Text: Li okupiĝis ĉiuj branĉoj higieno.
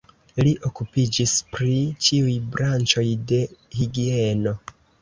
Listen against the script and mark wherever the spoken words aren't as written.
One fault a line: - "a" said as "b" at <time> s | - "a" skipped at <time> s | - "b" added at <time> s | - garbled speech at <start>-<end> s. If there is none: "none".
- "pri" added at 1.6 s
- "de" added at 3.4 s